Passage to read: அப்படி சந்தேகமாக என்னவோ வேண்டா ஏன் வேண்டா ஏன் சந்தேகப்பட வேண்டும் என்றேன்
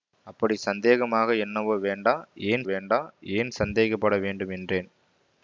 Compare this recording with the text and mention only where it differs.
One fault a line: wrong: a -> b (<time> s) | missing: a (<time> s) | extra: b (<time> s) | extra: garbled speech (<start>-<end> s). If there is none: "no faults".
no faults